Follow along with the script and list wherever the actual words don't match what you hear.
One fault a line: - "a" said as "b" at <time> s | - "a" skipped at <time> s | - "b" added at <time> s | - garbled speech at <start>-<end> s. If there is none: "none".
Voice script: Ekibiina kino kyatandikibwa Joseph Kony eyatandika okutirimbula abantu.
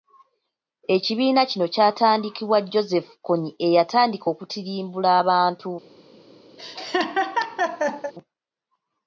none